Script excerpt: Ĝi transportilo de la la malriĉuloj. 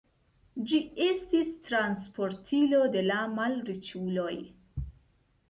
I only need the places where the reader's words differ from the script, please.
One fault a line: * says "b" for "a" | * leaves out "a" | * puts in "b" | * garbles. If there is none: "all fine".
* puts in "estis"
* leaves out "la"